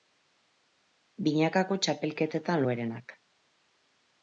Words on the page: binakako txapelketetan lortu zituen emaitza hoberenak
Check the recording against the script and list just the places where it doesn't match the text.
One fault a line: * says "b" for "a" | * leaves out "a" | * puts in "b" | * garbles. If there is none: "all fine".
* leaves out "lortu zituen emaitza"